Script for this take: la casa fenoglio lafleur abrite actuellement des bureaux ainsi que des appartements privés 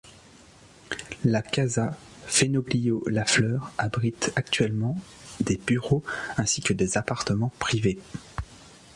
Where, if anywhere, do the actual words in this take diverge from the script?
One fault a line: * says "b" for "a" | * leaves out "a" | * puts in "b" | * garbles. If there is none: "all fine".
all fine